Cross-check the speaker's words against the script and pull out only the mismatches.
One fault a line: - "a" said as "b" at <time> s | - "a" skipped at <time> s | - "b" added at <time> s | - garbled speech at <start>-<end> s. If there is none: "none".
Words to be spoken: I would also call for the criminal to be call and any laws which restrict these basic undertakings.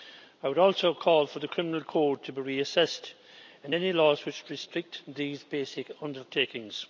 - "code" added at 1.8 s
- "call" said as "reassessed" at 2.4 s